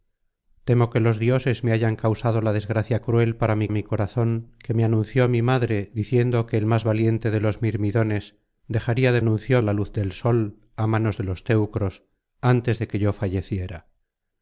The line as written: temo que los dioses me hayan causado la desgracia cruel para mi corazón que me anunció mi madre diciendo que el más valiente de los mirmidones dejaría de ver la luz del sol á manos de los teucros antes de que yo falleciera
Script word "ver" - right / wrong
wrong